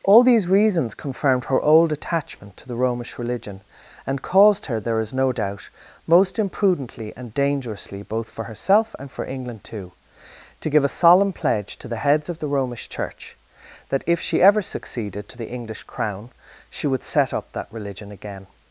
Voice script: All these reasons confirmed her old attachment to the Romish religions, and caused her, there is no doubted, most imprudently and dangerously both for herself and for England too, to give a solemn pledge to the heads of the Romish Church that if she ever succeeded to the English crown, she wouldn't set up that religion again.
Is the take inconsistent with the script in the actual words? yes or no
yes